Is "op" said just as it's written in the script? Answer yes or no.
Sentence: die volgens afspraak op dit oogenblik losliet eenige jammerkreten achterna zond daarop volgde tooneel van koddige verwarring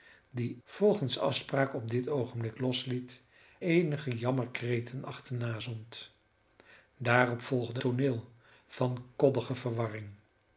yes